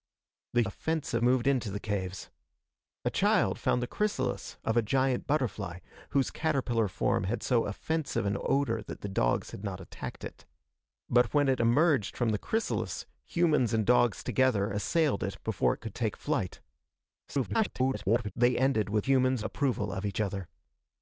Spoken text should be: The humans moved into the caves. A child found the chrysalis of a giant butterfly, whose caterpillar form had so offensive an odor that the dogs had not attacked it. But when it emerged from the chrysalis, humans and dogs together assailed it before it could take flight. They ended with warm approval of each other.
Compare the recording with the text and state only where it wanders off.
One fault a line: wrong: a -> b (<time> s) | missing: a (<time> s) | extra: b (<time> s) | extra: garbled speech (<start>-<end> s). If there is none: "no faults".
wrong: humans -> offensive (0.6 s)
extra: garbled speech (17.3-18.3 s)
wrong: warm -> humans (19.0 s)